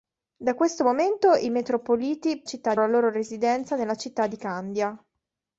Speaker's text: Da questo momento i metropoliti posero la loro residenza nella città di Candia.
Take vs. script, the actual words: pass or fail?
fail